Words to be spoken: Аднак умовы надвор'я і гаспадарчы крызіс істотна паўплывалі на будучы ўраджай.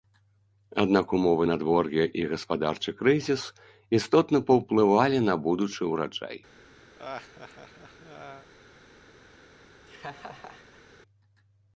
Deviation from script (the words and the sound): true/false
true